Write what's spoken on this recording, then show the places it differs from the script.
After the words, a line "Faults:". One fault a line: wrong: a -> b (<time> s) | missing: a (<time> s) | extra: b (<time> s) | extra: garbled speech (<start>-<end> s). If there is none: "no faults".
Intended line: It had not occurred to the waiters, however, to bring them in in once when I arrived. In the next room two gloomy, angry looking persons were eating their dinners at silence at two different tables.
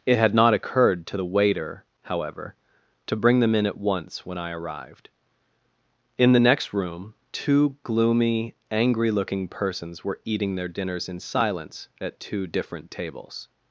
It had not occurred to the waiter, however, to bring them in at once when I arrived. In the next room two gloomy, angry looking persons were eating their dinners in silence at two different tables.
Faults:
wrong: waiters -> waiter (1.2 s)
wrong: in -> at (3.7 s)
wrong: at -> in (11.1 s)